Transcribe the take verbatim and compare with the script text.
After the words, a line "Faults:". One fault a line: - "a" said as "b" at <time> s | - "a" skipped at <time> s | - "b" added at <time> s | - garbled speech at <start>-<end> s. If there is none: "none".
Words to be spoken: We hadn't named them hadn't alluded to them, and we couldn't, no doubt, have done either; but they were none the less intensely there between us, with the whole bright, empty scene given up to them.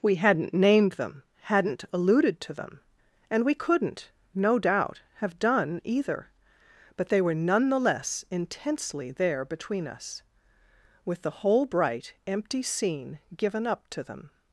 We hadn't named them hadn't alluded to them, and we couldn't, no doubt, have done either; but they were none the less intensely there between us, with the whole bright, empty scene given up to them.
Faults:
none